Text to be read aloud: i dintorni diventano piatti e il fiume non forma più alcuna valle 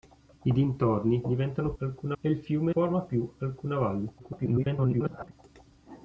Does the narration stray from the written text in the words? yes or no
yes